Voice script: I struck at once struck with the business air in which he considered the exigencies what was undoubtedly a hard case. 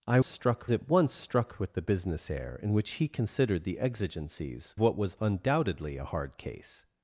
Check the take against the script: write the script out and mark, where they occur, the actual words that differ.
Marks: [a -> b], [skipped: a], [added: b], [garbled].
I struck at once struck with the business air in which he considered the exigencies what was undoubtedly a hard case.